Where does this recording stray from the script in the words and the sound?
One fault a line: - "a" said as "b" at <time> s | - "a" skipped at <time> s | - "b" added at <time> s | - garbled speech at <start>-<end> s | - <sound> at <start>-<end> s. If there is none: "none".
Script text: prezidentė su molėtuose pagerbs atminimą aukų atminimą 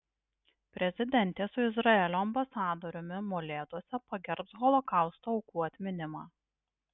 - "izraelio ambasadoriumi" added at 1.7 s
- "atminimą" said as "holokausto" at 4.6 s